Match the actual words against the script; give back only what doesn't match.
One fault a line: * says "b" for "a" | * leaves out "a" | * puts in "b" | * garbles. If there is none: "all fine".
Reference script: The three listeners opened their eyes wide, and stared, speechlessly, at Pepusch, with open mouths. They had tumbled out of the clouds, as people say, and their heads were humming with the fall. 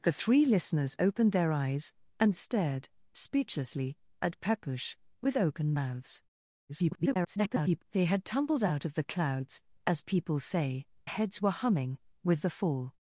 * leaves out "wide"
* garbles
* leaves out "and their"